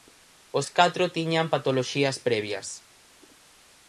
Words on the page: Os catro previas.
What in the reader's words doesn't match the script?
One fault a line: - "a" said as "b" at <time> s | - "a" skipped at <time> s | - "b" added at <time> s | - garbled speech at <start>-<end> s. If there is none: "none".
- "tiñan patoloxías" added at 1.2 s